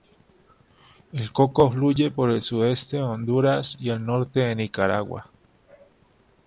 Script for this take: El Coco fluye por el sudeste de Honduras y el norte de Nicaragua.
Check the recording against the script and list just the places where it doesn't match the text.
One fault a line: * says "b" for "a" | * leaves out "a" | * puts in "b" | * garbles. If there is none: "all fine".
all fine